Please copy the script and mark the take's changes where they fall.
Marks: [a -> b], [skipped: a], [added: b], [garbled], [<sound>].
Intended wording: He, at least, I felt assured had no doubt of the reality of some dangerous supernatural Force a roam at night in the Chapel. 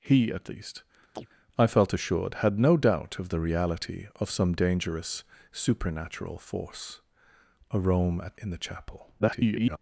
He, at least, [chirp] I felt assured had no doubt of the reality of some dangerous supernatural Force a roam at [skipped: night] in the Chapel. [garbled]